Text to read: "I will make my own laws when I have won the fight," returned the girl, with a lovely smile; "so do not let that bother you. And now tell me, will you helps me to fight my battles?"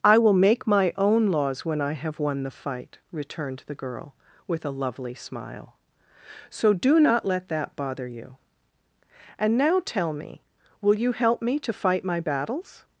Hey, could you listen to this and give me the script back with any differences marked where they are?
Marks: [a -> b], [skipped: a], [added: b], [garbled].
"I will make my own laws when I have won the fight," returned the girl, with a lovely smile; "so do not let that bother you. And now tell me, will you [helps -> help] me to fight my battles?"